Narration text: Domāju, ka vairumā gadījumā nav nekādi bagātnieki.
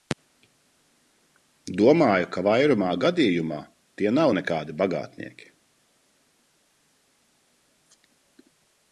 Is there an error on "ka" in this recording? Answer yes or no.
no